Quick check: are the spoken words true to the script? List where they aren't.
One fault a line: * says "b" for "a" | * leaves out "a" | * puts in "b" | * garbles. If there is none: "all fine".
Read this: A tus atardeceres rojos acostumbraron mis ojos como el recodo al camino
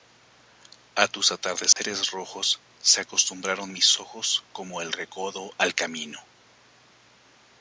* puts in "se"